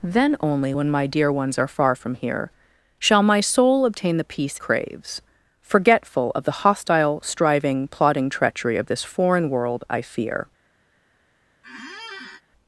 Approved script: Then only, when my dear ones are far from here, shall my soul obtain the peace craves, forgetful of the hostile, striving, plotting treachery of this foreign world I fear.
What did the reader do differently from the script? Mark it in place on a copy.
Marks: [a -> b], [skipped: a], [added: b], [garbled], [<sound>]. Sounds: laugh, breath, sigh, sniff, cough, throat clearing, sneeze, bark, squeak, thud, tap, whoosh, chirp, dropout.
Then only, when my dear ones are far from here, shall my soul obtain the peace craves, forgetful of the hostile, striving, plotting treachery of this foreign world I fear. [squeak]